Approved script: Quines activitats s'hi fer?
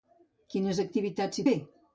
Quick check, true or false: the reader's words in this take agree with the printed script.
true